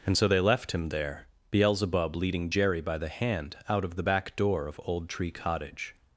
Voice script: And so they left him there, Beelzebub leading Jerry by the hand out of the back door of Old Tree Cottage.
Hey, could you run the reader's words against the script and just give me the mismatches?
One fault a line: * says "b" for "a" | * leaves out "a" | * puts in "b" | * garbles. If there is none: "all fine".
all fine